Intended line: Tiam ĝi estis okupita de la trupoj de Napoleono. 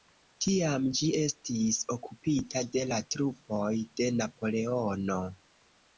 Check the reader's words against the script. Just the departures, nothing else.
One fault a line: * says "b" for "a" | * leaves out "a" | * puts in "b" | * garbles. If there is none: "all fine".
all fine